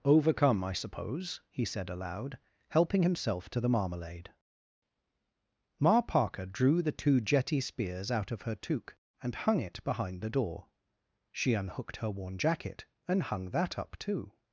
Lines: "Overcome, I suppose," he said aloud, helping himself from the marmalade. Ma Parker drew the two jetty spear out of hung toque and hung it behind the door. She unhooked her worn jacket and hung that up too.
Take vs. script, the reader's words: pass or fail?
fail